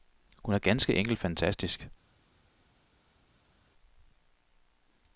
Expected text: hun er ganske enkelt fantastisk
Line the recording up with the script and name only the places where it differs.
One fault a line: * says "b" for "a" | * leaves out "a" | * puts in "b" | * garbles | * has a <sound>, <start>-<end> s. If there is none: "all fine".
all fine